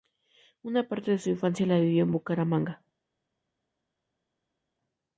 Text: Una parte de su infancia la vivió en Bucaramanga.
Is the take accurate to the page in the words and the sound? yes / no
yes